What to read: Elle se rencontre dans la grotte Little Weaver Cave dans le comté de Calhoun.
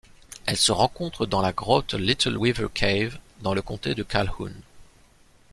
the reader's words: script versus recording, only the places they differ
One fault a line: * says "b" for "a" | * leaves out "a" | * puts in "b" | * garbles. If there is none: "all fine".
all fine